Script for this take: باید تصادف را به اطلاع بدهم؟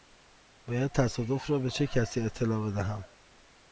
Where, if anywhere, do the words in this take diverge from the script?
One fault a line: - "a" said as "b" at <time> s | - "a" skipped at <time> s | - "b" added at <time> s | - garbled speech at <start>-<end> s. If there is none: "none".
- "چه کسی" added at 1.7 s